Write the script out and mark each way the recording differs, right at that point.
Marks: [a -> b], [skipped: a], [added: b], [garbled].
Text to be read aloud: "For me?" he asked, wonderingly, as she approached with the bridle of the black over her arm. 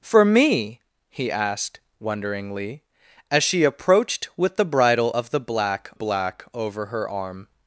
"For me?" he asked, wonderingly, as she approached with the bridle of the black [added: black] over her arm.